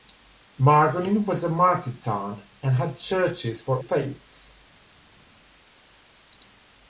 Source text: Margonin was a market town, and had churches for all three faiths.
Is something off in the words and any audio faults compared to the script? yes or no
yes